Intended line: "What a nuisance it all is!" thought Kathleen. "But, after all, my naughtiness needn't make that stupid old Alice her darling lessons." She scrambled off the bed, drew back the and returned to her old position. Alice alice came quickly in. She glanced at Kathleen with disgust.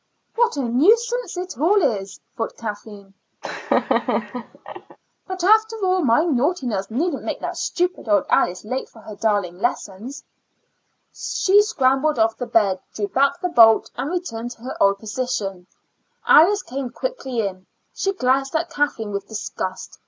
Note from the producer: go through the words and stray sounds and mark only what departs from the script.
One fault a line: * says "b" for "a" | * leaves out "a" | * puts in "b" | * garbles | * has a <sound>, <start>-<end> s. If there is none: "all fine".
* has a laugh, 3.4-5.0 s
* puts in "late for"
* puts in "bolt"
* leaves out "alice"